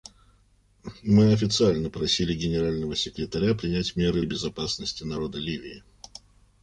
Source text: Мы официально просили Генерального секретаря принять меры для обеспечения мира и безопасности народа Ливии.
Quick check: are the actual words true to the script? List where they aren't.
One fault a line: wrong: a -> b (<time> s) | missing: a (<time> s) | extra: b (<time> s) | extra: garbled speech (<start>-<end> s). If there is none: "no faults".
missing: для обеспечения мира (4.2 s)